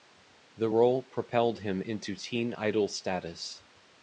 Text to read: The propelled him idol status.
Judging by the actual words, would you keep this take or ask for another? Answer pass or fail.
fail